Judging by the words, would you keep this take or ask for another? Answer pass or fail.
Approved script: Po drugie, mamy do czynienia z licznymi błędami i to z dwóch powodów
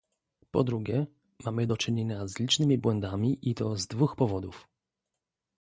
pass